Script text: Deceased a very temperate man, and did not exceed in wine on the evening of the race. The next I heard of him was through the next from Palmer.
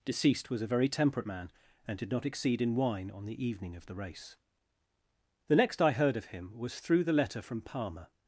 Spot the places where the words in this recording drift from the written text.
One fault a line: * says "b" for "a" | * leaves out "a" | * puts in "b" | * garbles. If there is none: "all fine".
* puts in "was"
* says "letter" for "next"